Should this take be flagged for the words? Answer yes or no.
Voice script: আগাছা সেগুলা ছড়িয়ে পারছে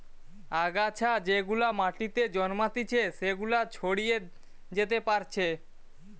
yes